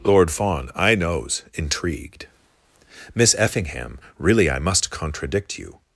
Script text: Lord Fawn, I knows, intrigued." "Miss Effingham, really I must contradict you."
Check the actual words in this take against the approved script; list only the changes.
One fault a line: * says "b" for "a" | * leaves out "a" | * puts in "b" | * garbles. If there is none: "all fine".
all fine